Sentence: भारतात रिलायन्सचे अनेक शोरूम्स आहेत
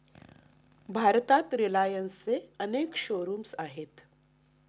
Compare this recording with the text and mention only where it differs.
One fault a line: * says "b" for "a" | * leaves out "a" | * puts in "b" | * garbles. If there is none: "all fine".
all fine